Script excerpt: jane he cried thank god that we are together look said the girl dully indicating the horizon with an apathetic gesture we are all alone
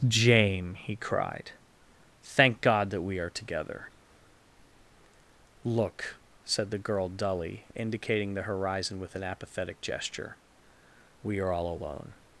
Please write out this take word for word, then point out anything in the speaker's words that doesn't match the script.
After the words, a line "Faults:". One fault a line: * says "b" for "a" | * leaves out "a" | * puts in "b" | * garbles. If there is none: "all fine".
jane he cried thank god that we are together look said the girl dully indicating the horizon with an apathetic gesture we are all alone
Faults:
all fine